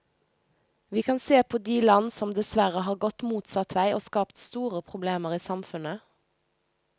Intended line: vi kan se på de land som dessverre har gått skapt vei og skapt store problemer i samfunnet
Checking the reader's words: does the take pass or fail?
fail